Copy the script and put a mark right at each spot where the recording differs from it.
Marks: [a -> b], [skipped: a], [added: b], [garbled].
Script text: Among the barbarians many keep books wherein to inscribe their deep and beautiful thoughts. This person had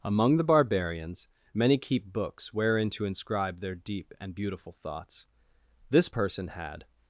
Among the barbarians many keep books wherein to inscribe their deep and beautiful thoughts. This person had